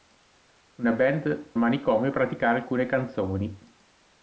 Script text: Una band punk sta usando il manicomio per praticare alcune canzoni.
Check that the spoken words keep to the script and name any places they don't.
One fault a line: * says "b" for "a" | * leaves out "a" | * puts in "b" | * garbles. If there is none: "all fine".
* leaves out "punk sta usando"
* leaves out "per"